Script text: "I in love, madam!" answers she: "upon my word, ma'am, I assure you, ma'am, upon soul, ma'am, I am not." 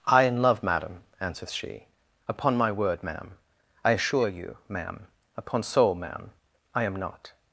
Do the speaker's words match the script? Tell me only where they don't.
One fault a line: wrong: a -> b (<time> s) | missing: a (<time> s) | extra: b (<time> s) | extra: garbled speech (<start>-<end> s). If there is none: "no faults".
no faults